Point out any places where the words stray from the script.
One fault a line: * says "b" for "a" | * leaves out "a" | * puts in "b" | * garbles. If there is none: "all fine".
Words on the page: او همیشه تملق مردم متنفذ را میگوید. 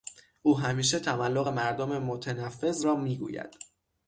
all fine